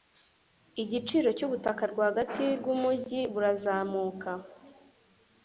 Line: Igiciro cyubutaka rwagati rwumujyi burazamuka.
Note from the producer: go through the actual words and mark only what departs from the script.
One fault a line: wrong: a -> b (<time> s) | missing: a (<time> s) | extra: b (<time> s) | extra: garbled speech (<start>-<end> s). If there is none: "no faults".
no faults